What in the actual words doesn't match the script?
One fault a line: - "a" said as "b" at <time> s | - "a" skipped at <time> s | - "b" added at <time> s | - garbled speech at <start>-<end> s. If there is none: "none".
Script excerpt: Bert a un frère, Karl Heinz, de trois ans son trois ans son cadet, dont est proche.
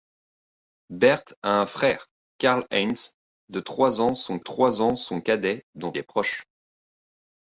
none